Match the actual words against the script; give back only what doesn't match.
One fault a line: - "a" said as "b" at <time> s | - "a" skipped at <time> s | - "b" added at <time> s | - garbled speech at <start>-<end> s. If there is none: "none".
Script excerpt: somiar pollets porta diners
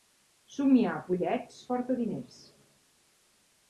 none